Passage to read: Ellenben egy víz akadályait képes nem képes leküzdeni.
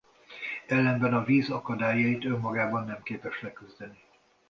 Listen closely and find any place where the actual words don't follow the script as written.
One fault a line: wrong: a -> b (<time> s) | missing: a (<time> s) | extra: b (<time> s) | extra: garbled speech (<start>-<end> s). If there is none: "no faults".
wrong: egy -> a (1.1 s)
wrong: képes -> önmagában (2.2 s)